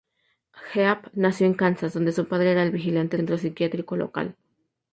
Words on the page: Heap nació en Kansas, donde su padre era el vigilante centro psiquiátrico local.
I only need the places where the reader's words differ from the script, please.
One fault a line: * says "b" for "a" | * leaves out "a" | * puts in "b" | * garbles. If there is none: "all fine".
all fine